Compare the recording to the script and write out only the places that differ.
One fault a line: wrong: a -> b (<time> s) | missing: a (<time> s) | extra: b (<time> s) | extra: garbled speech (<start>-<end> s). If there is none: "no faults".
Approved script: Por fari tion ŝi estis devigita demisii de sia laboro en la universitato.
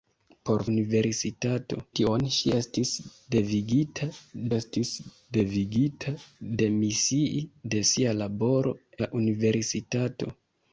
wrong: fari -> universitato (0.7 s)
extra: estis devigita (4.5 s)
missing: en (8.8 s)